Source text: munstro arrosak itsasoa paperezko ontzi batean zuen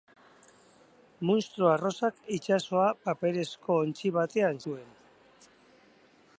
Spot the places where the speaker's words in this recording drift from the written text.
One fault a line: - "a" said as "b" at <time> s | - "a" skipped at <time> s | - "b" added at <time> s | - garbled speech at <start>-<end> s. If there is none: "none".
none